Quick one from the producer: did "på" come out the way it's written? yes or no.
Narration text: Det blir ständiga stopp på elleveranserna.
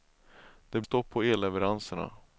yes